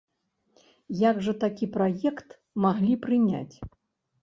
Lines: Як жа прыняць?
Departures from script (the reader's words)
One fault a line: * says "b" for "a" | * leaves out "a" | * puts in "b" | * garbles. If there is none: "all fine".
* puts in "такі праект маглі"